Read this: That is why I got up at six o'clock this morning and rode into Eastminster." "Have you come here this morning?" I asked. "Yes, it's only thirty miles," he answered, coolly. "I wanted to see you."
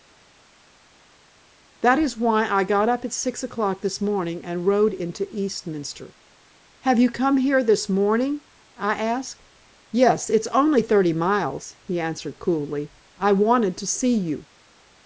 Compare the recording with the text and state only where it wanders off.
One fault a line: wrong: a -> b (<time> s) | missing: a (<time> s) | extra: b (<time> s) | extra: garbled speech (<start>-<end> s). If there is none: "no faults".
no faults